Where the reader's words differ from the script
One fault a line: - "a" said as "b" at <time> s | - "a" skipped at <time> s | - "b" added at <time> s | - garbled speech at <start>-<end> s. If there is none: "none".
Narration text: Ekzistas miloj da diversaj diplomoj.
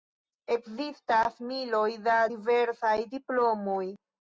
none